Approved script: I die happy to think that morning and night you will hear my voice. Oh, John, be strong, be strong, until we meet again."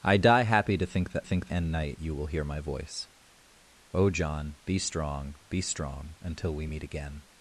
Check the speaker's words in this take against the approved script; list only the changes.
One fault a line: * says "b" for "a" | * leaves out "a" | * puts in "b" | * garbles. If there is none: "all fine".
* says "think" for "morning"